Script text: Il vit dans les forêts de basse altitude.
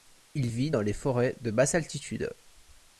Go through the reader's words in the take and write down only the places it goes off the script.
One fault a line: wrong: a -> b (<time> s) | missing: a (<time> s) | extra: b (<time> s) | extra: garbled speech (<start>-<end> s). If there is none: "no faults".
no faults